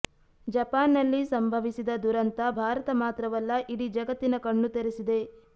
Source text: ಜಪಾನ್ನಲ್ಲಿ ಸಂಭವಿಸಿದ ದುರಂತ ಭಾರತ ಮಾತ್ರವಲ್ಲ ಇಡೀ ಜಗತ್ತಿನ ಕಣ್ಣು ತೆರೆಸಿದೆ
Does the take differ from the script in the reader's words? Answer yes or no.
no